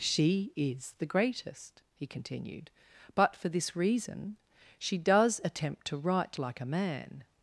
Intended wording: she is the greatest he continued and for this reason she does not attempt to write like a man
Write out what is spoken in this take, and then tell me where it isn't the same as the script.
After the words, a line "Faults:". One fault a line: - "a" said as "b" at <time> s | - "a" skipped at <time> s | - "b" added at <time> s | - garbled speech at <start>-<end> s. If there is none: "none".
she is the greatest he continued but for this reason she does attempt to write like a man
Faults:
- "and" said as "but" at 3.1 s
- "not" skipped at 5.4 s